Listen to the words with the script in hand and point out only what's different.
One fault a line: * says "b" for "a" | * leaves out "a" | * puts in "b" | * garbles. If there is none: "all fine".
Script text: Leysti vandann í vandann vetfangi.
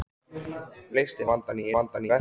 all fine